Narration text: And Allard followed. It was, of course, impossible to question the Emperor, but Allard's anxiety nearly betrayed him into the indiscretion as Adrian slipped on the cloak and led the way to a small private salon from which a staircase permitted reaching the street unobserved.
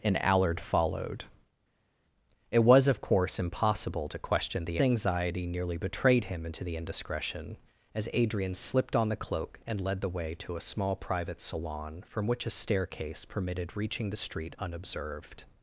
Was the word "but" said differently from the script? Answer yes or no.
yes